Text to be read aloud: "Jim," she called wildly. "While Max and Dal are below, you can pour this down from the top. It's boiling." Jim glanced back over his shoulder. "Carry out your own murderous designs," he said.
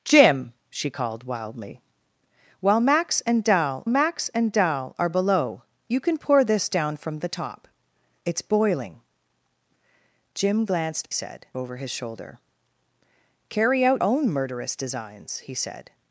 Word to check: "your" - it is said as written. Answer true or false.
false